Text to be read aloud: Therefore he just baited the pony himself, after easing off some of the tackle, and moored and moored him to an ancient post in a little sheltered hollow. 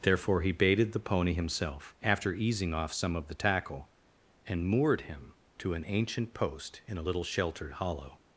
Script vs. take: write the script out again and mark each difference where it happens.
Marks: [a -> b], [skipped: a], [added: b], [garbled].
Therefore he [skipped: just] baited the pony himself, after easing off some of the tackle, and moored [skipped: and moored] him to an ancient post in a little sheltered hollow.